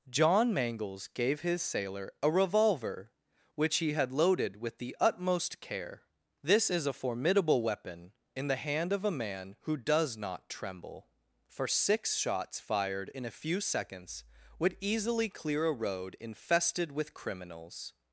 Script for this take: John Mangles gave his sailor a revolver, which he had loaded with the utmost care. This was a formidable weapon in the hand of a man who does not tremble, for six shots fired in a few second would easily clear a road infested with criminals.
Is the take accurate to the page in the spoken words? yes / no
no